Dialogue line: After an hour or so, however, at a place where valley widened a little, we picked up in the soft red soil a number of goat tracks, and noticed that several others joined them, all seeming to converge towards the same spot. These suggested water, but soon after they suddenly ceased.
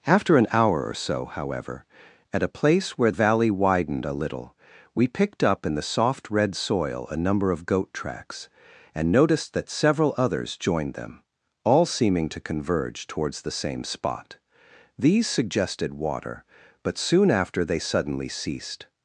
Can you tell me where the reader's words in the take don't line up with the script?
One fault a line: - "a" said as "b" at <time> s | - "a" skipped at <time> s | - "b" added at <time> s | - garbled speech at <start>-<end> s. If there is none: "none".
none